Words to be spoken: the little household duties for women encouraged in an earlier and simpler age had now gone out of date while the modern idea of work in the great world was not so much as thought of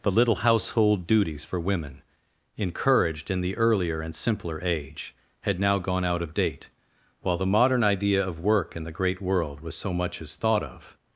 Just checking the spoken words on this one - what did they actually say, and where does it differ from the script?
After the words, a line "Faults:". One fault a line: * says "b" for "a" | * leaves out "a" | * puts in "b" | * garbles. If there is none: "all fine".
the little household duties for women encouraged in the earlier and simpler age had now gone out of date while the modern idea of work in the great world was so much as thought of
Faults:
* says "the" for "an"
* leaves out "not"